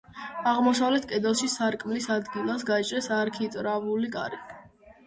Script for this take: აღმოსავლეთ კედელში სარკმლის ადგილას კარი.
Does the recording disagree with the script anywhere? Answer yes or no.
yes